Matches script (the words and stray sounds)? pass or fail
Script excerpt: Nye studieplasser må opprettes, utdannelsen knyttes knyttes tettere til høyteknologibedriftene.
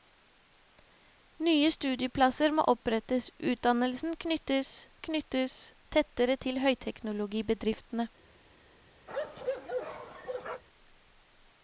fail